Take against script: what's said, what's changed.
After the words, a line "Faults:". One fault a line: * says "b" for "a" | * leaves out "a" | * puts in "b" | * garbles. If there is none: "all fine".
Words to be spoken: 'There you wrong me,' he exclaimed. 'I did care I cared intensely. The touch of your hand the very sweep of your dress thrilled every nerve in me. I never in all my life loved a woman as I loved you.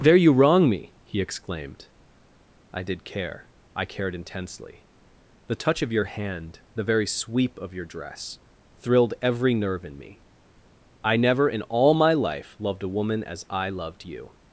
'There you wrong me,' he exclaimed. 'I did care I cared intensely. The touch of your hand the very sweep of your dress thrilled every nerve in me. I never in all my life loved a woman as I loved you.
Faults:
all fine